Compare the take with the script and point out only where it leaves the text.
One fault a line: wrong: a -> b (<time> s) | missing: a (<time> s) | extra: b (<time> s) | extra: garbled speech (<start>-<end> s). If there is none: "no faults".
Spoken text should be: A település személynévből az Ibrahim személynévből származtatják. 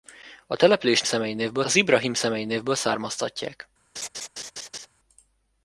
no faults